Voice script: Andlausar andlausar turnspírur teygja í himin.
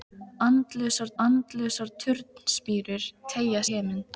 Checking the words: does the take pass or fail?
pass